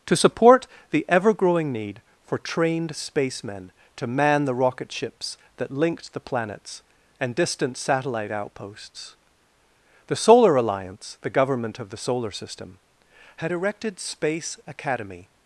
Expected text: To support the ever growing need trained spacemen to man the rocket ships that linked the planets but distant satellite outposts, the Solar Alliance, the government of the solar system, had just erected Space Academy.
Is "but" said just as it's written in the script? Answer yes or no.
no